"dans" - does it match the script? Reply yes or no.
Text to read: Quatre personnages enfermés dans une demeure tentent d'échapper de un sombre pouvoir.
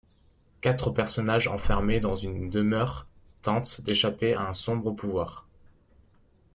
yes